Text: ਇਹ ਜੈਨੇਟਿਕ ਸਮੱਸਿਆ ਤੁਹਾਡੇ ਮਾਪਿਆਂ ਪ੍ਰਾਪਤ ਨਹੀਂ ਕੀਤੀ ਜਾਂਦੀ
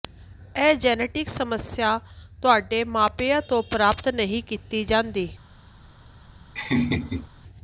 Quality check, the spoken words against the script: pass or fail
fail